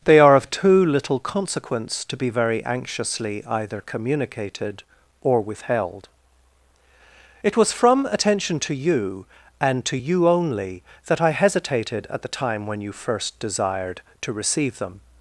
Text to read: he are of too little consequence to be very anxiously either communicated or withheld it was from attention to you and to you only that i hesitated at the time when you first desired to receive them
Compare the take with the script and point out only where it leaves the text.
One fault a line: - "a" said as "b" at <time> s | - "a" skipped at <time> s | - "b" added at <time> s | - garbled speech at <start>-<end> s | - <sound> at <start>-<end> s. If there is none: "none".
- "he" said as "they" at 0.1 s